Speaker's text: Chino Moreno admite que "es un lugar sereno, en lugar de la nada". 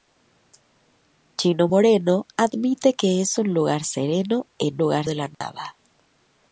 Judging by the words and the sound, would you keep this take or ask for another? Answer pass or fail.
fail